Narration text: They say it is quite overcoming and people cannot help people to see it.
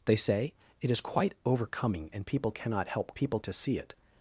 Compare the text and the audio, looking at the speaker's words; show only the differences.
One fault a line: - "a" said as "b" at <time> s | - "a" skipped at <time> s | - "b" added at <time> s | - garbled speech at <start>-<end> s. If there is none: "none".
none